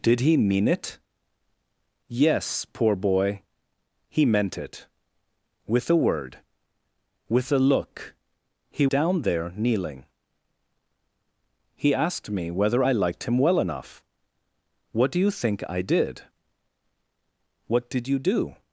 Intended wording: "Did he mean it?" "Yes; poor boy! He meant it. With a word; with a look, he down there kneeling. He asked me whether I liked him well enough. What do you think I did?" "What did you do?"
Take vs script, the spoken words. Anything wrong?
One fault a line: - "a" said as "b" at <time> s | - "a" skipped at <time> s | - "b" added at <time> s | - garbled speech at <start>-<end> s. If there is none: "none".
none